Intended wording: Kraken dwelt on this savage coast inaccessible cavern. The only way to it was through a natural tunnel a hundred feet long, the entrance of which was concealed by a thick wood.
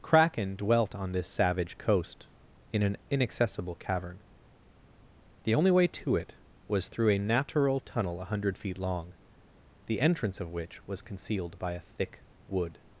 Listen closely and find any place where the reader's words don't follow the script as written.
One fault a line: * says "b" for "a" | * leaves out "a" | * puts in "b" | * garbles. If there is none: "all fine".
* puts in "in an"